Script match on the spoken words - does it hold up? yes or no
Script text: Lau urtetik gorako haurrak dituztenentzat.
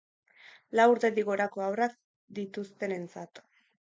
yes